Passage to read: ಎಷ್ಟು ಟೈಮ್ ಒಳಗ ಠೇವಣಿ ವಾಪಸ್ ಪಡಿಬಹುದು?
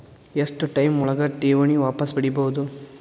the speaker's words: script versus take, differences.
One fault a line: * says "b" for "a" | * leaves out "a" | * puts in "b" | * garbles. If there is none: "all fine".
all fine